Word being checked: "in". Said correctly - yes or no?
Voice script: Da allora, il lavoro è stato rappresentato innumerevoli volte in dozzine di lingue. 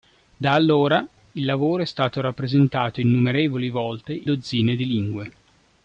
no